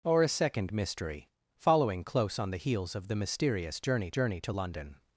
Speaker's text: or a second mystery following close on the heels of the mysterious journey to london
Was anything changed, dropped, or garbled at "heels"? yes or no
no